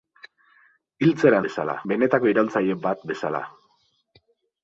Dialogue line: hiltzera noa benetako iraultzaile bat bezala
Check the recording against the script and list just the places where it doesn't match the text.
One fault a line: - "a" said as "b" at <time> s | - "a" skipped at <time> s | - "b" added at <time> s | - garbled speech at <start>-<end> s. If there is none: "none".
- "noa" said as "bezala" at 1.5 s